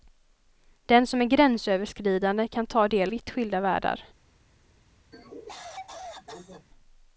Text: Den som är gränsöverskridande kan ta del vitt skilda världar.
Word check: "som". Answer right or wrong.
right